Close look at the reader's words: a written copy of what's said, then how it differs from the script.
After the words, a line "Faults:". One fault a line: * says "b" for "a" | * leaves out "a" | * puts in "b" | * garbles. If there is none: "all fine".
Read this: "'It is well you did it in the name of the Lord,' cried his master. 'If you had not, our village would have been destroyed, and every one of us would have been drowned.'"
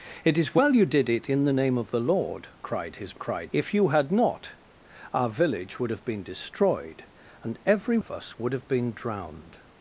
"'It is well you did it in the name of the Lord,' cried his cried. 'If you had not, our village would have been destroyed, and every of us would have been drowned.'"
Faults:
* says "cried" for "master"
* leaves out "one"